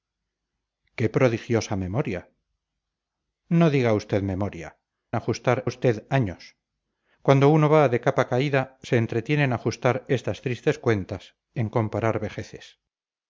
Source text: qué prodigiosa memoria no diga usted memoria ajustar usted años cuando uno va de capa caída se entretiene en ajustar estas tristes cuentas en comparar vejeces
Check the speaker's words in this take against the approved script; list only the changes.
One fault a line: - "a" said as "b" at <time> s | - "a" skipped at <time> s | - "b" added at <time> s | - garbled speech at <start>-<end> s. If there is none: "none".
none